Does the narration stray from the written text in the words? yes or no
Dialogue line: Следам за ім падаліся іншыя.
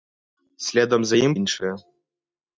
yes